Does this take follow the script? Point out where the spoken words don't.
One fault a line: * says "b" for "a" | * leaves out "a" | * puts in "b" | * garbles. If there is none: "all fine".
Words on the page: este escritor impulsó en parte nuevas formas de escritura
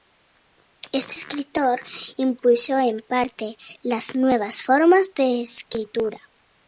* puts in "las"